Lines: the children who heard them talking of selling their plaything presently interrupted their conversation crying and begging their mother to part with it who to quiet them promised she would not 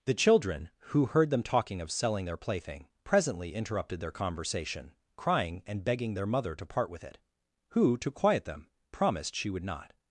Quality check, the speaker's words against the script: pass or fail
pass